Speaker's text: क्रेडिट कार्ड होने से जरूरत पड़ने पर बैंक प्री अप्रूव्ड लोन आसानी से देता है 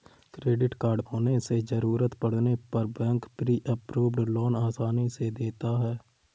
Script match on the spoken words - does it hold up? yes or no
yes